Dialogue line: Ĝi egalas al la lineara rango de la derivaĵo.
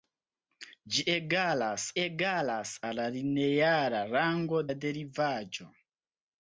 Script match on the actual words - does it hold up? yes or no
no